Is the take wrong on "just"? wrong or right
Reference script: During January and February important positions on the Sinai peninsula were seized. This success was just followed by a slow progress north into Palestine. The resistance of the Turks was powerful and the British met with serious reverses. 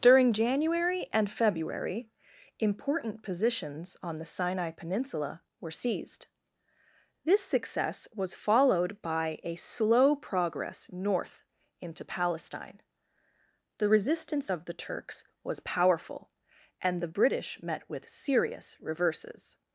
wrong